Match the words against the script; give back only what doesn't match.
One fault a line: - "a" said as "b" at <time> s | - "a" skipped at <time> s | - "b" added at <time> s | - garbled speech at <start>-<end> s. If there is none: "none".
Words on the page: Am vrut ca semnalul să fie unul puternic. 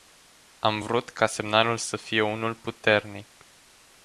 none